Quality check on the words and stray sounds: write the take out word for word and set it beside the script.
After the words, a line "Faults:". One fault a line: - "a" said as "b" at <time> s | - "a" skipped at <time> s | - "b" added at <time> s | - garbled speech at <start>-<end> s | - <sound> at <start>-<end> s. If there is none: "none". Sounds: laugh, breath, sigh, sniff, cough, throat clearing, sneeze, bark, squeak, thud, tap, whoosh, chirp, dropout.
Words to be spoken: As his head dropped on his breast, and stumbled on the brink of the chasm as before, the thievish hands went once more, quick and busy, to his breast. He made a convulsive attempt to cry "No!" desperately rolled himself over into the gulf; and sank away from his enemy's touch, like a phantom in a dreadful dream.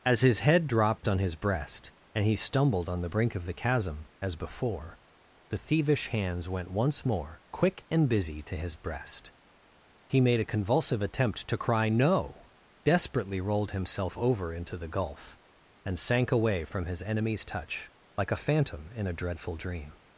As his head dropped on his breast, and he stumbled on the brink of the chasm as before, the thievish hands went once more, quick and busy, to his breast. He made a convulsive attempt to cry "No!" desperately rolled himself over into the gulf; and sank away from his enemy's touch, like a phantom in a dreadful dream.
Faults:
- "he" added at 2.2 s